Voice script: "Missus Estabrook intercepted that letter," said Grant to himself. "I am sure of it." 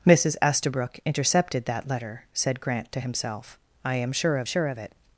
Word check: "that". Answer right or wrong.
right